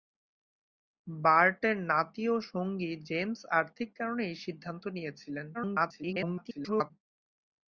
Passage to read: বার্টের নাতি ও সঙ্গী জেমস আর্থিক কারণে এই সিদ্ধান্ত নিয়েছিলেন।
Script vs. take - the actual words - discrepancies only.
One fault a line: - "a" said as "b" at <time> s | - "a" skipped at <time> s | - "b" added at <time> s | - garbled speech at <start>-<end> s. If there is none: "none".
- garbled speech at 5.5-6.9 s